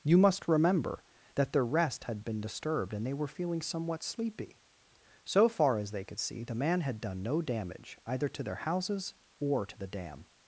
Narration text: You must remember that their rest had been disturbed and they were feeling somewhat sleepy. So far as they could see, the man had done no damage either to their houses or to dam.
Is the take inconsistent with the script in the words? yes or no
yes